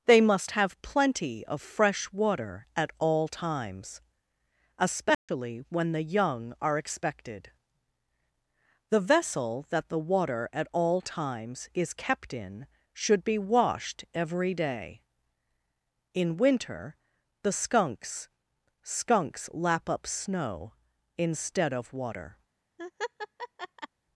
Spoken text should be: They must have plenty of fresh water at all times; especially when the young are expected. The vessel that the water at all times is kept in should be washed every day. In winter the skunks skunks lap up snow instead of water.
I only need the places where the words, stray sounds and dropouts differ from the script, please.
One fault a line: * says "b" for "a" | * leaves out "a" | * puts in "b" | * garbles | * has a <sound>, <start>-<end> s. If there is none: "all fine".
* has a dropout, 5.1-5.3 s
* has a laugh, 22.8-23.9 s